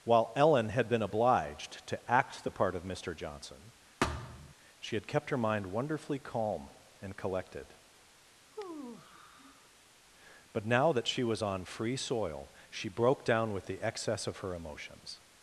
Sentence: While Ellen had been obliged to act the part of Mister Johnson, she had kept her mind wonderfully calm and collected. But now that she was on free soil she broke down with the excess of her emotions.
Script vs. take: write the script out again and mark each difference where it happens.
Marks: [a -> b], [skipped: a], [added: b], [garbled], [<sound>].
While Ellen had been obliged to act the part of Mister Johnson, [thud] she had kept her mind wonderfully calm and collected. [sigh] But now that she was on free soil she broke down with the excess of her emotions.